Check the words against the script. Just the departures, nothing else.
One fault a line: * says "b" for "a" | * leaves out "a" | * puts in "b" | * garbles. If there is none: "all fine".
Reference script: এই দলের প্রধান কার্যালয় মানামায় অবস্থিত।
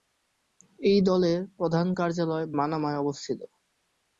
all fine